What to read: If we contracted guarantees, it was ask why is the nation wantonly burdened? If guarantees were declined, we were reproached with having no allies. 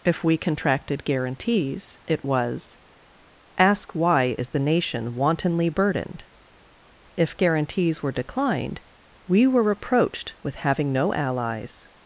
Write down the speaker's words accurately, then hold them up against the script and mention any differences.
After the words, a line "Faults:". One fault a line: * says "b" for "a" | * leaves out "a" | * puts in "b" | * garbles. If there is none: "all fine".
If we contracted guarantees, it was ask why is the nation wantonly burdened? If guarantees were declined, we were reproached with having no allies.
Faults:
all fine